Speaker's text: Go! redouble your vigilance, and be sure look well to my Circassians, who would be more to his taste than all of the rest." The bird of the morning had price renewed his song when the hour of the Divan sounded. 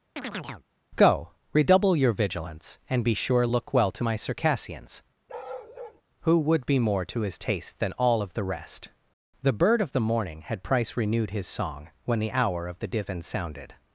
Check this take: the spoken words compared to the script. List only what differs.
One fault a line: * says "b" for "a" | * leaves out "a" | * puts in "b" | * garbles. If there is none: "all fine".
all fine